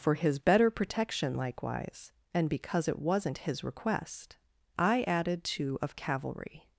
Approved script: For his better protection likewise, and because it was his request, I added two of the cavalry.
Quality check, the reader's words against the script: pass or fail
fail